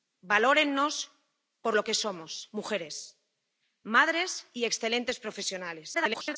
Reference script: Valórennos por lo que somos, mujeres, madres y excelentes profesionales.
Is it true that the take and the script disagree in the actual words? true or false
true